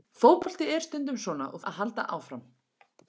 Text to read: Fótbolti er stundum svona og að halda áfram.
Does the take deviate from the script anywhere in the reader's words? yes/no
no